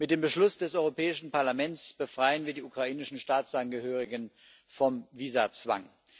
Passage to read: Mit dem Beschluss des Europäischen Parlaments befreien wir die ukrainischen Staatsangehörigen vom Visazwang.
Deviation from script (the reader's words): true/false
false